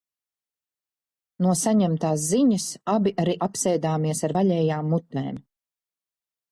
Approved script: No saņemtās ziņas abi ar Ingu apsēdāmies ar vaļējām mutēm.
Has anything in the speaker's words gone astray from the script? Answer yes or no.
yes